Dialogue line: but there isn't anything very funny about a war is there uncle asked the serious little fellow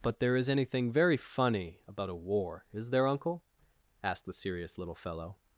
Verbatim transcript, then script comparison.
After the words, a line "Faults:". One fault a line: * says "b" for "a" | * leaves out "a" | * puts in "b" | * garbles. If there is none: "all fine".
but there is anything very funny about a war is there uncle asked the serious little fellow
Faults:
* says "is" for "isn't"